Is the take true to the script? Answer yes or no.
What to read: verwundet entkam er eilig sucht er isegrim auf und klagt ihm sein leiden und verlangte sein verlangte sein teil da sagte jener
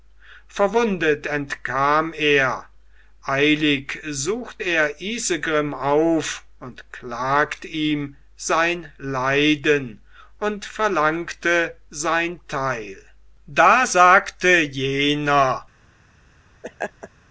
no